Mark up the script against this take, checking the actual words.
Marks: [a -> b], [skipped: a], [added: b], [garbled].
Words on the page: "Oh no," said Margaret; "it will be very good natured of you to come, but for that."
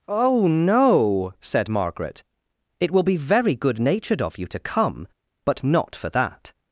"Oh no," said Margaret; "it will be very good natured of you to come, but [added: not] for that."